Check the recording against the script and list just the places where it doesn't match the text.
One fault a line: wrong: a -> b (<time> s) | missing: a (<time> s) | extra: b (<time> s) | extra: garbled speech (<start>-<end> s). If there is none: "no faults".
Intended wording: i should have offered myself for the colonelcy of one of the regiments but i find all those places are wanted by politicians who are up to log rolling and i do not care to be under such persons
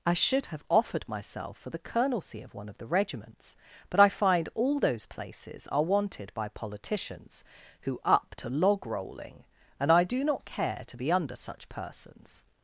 missing: are (8.0 s)